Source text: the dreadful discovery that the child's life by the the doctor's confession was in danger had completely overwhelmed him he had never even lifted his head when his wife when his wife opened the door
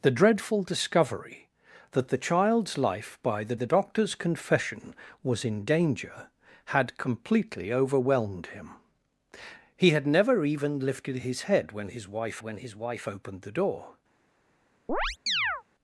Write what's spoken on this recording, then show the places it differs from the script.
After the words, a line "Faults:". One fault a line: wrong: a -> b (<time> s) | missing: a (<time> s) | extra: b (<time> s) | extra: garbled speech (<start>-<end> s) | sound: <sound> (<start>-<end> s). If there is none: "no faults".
the dreadful discovery that the child's life by the the doctor's confession was in danger had completely overwhelmed him he had never even lifted his head when his wife when his wife opened the door
Faults:
sound: chirp (14.9-15.6 s)